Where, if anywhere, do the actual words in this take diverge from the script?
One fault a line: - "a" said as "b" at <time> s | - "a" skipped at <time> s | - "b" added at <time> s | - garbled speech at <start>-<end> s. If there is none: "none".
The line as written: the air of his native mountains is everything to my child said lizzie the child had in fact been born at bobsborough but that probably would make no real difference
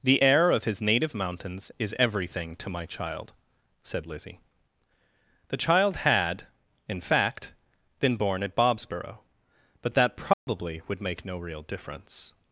none